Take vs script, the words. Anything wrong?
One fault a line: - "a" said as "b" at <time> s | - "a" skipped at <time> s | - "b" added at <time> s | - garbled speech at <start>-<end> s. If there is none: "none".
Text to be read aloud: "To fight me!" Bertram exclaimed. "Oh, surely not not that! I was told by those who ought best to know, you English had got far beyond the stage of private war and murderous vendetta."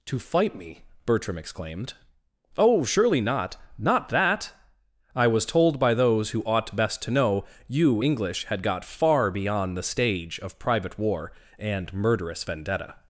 none